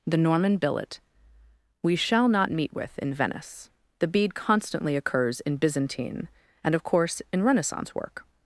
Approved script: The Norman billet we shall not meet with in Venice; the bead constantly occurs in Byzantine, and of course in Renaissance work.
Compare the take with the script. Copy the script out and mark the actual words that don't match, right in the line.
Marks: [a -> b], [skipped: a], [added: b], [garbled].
The Norman billet we shall not meet with in Venice; the bead constantly occurs in Byzantine, and of course in Renaissance work.